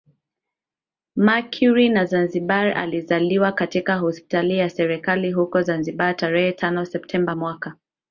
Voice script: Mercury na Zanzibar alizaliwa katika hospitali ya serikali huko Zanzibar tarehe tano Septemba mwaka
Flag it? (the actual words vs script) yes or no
no